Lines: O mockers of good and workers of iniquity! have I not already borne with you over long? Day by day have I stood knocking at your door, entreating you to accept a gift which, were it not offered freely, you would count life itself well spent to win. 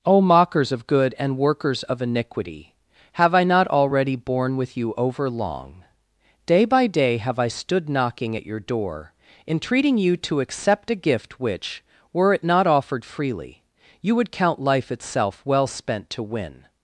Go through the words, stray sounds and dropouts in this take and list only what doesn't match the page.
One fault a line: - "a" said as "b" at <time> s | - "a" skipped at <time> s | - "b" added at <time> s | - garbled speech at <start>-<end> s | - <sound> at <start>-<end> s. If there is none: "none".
none